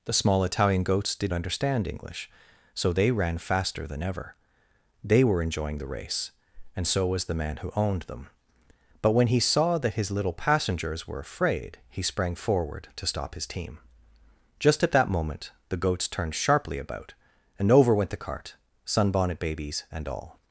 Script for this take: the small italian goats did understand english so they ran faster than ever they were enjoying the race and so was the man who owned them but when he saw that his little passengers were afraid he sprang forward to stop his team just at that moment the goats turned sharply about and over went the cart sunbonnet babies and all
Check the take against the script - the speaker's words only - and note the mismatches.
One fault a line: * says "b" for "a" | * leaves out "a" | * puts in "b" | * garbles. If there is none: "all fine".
all fine